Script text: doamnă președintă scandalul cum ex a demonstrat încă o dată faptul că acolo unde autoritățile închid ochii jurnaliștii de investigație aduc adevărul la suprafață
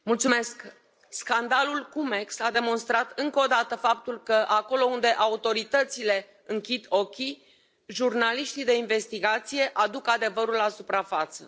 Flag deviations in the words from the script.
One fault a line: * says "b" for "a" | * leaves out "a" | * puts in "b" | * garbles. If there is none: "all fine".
all fine